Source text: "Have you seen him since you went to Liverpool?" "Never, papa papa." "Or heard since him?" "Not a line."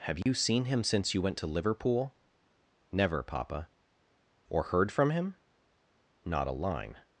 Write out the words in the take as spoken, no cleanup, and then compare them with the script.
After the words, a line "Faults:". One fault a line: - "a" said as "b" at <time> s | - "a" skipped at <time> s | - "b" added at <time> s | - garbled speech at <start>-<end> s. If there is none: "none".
"Have you seen him since you went to Liverpool?" "Never, papa." "Or heard from him?" "Not a line."
Faults:
- "papa" skipped at 3.7 s
- "since" said as "from" at 4.9 s